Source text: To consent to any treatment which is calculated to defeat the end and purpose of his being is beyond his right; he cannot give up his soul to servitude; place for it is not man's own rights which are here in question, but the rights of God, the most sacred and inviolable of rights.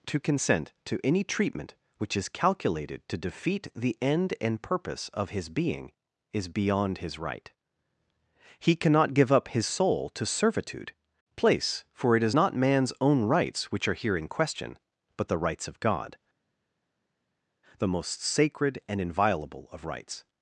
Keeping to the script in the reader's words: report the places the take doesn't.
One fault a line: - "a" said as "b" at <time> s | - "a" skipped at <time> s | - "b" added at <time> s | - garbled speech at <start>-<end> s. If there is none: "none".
none